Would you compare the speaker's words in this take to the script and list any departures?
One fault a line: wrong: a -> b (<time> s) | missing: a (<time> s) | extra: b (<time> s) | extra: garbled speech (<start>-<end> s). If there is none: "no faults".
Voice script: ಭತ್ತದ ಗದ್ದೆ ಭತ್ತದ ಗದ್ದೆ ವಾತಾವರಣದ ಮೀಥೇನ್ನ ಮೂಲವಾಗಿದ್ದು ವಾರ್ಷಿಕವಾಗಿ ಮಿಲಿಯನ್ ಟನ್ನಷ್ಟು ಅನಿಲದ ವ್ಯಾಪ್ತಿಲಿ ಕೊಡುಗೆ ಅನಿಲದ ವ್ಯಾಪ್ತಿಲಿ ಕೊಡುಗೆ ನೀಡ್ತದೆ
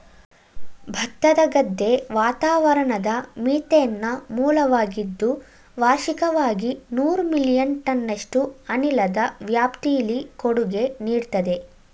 missing: ಭತ್ತದ ಗದ್ದೆ (1.9 s)
extra: ನೂರು (6.9 s)
missing: ಅನಿಲದ ವ್ಯಾಪ್ತಿಲಿ ಕೊಡುಗೆ (10.8 s)